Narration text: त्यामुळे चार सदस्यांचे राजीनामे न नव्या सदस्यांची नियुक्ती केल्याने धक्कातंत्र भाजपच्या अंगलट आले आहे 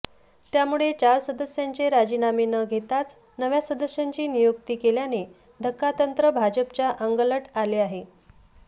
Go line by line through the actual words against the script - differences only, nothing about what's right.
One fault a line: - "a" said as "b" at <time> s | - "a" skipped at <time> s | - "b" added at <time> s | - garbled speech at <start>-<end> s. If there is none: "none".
- "घेताच" added at 2.6 s